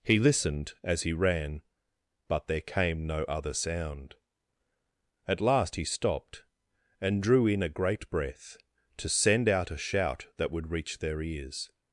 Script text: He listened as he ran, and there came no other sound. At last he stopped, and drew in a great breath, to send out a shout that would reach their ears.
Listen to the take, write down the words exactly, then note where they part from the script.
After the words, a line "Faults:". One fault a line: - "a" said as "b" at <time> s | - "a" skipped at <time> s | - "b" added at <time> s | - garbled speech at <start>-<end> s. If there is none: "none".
He listened as he ran, but there came no other sound. At last he stopped, and drew in a great breath, to send out a shout that would reach their ears.
Faults:
- "and" said as "but" at 2.3 s